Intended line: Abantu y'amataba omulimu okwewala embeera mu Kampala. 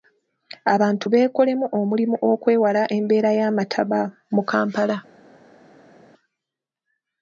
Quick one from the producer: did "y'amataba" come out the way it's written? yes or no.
no